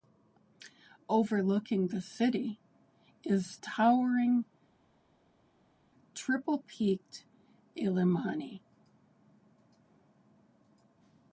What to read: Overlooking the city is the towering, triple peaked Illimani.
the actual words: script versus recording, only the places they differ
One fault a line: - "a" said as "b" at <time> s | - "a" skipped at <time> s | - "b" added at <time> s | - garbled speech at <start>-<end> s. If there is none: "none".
- "the" skipped at 3.6 s